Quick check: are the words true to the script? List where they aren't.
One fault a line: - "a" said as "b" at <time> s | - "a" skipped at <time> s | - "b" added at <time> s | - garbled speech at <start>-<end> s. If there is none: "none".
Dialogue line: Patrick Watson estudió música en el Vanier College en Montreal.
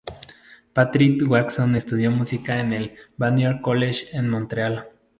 none